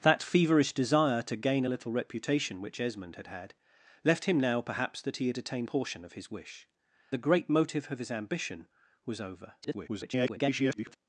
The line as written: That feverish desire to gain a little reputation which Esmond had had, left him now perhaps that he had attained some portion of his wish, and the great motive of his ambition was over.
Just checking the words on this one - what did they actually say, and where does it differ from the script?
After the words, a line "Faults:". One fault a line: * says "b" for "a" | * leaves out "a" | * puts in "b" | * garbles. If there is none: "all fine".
That feverish desire to gain a little reputation which Esmond had had, left him now perhaps that he had attained portion of his wish, the great motive of his ambition was over. [garbled]
Faults:
* leaves out "some"
* leaves out "and"
* garbles